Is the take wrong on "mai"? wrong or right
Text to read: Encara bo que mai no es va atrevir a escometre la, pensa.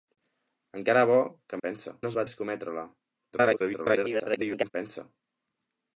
wrong